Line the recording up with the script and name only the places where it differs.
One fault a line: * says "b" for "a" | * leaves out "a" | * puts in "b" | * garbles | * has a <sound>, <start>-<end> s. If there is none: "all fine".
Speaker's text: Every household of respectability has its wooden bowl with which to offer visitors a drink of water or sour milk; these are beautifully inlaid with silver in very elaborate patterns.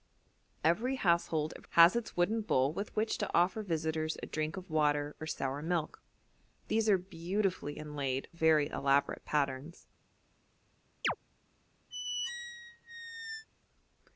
* leaves out "respectability"
* leaves out "with silver in"
* has a chirp, 11.0-11.2 s
* has a squeak, 11.9-13.5 s